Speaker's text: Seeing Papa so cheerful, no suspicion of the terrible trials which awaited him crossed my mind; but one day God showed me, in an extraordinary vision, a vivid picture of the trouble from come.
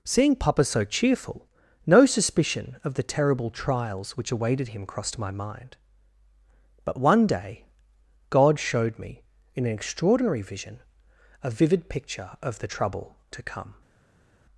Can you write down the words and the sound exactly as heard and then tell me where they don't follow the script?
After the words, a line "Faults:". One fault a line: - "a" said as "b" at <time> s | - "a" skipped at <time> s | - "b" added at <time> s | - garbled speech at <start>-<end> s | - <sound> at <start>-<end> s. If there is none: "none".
Seeing Papa so cheerful, no suspicion of the terrible trials which awaited him crossed my mind; but one day God showed me, in an extraordinary vision, a vivid picture of the trouble to come.
Faults:
- "from" said as "to" at 13.3 s